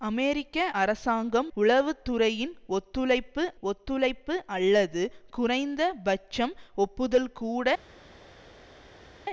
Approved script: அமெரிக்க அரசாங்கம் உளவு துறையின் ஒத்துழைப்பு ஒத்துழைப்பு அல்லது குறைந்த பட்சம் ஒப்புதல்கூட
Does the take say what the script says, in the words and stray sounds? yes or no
yes